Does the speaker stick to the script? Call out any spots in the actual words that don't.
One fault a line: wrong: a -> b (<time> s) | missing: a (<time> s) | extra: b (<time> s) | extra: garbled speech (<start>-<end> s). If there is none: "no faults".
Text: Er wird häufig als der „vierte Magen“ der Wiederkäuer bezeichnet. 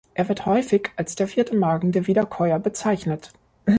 no faults